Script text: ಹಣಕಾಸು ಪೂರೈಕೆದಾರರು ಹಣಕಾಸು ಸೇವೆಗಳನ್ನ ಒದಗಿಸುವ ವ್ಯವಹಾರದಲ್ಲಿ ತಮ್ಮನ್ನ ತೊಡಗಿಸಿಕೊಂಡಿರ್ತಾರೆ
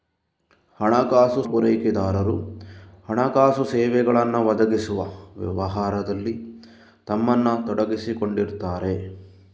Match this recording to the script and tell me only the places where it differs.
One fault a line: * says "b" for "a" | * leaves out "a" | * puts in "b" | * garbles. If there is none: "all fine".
all fine